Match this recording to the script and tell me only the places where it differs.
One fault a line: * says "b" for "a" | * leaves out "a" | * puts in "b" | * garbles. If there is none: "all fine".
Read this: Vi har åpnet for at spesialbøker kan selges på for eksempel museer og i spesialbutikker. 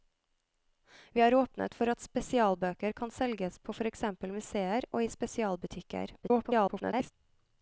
* garbles